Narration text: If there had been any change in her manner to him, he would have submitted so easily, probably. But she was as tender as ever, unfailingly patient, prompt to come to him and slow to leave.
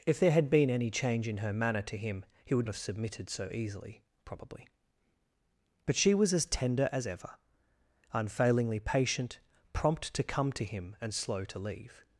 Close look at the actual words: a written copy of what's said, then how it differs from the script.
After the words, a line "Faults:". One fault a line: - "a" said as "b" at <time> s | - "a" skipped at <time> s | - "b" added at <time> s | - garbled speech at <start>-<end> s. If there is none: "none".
If there had been any change in her manner to him, he would have submitted so easily, probably. But she was as tender as ever, unfailingly patient, prompt to come to him and slow to leave.
Faults:
none